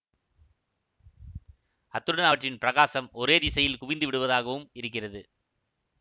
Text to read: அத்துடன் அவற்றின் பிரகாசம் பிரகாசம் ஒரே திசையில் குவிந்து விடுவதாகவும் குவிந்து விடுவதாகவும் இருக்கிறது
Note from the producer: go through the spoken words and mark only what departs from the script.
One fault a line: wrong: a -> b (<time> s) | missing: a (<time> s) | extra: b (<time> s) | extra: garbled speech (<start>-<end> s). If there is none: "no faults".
missing: பிரகாசம் (3.1 s)
missing: குவிந்து விடுவதாகவும் (4.7 s)